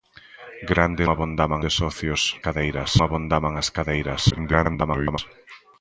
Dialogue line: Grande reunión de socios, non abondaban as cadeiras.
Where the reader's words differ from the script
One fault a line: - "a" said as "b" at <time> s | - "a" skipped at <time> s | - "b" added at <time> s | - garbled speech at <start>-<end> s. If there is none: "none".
- "reunión" said as "abondaban" at 1.1 s
- "non" said as "cadeiras" at 2.4 s
- garbled speech at 4.3-5.2 s